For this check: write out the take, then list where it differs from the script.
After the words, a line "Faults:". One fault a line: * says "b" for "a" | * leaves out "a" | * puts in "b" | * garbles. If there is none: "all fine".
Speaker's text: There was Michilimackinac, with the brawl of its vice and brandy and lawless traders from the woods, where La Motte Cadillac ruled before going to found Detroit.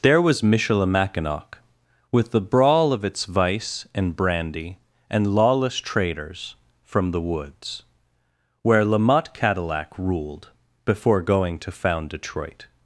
There was Michilimackinac, with the brawl of its vice and brandy and lawless traders from the woods, where La Motte Cadillac ruled before going to found Detroit.
Faults:
all fine